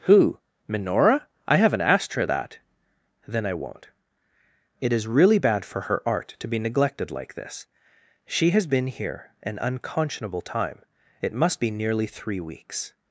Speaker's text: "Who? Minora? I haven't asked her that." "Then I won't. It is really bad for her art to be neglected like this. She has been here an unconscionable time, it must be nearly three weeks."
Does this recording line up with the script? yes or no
yes